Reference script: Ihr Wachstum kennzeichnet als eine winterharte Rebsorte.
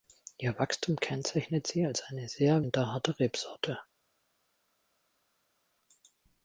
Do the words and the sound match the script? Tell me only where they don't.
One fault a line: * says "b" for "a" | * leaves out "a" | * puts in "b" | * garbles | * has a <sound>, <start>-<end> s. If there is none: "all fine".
* puts in "sie"
* puts in "sehr"